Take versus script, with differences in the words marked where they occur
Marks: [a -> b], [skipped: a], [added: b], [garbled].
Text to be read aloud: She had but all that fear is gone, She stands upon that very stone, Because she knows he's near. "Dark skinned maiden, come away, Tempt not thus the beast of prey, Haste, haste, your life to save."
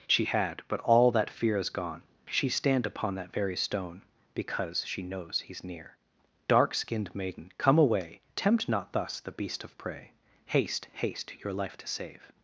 She had but all that fear is gone, She [stands -> stand] upon that very stone, Because she knows he's near. "Dark skinned maiden, come away, Tempt not thus the beast of prey, Haste, haste, your life to save."